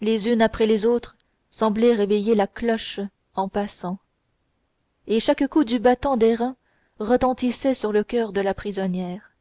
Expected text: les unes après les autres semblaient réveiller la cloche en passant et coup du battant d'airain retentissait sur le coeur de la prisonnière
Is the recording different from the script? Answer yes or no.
yes